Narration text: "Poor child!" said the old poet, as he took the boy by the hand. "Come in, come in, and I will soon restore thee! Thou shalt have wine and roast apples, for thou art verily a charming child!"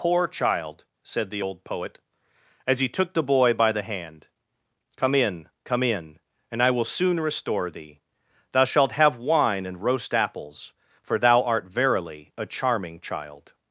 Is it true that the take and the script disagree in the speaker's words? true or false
false